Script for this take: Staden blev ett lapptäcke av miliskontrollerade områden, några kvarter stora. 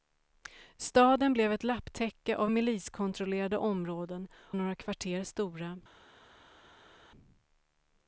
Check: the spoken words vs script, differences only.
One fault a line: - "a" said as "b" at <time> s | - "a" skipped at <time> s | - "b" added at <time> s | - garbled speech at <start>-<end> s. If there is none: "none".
none